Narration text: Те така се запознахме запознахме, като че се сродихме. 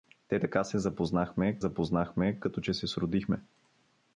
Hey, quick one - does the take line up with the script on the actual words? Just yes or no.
yes